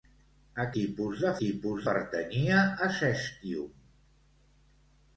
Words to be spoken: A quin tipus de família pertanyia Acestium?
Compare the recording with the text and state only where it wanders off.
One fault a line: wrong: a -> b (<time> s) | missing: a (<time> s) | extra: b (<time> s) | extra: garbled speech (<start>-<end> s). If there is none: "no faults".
missing: quin (0.6 s)
wrong: família -> tipus (1.4 s)